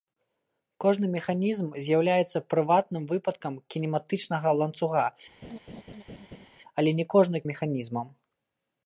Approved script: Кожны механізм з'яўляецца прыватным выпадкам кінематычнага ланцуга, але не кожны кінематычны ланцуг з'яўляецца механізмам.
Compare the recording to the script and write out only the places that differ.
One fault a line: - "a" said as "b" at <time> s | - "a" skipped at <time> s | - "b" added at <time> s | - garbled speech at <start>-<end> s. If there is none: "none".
- "кінематычны ланцуг з'яўляецца" skipped at 7.4 s